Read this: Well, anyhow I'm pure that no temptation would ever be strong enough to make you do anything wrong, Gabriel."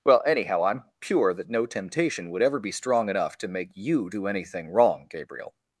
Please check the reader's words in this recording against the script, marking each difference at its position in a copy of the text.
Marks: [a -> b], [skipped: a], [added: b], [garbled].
Well, anyhow I'm pure that no temptation would ever be strong enough to make you do anything wrong, Gabriel."